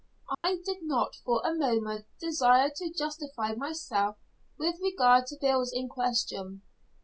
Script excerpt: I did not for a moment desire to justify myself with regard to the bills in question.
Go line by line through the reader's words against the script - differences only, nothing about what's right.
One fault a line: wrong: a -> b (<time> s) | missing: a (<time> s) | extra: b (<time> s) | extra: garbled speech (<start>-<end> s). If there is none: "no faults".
missing: the (5.4 s)